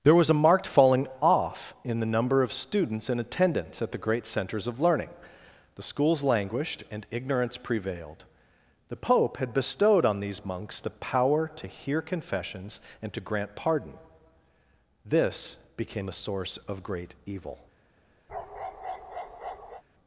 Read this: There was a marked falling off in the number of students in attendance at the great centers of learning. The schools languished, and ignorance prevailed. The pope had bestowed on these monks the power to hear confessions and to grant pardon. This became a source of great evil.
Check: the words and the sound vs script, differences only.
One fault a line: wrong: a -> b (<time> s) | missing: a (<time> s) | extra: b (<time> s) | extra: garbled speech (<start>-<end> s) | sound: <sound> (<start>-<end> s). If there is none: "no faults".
sound: bark (18.3-19.8 s)